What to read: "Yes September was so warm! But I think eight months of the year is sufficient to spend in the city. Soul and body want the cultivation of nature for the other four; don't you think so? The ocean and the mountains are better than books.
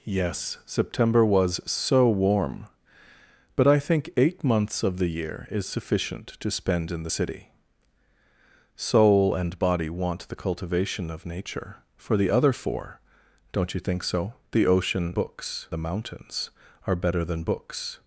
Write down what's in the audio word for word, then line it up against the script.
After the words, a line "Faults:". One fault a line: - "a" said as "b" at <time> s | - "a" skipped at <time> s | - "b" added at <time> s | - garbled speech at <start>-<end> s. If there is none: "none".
"Yes September was so warm! But I think eight months of the year is sufficient to spend in the city. Soul and body want the cultivation of nature for the other four; don't you think so? The ocean books the mountains are better than books.
Faults:
- "and" said as "books" at 15.1 s